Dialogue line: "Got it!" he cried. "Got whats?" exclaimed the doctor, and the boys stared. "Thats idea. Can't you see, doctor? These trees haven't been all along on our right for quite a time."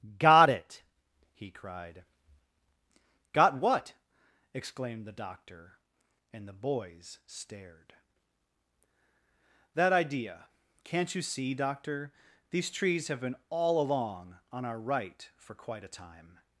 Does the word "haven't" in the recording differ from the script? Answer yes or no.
yes